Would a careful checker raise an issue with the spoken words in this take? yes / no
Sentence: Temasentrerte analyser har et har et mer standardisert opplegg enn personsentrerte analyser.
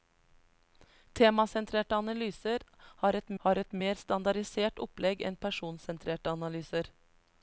no